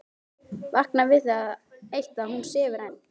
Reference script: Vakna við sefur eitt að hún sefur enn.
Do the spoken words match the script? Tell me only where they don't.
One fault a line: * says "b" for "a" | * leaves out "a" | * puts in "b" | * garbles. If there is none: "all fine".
* says "það" for "sefur"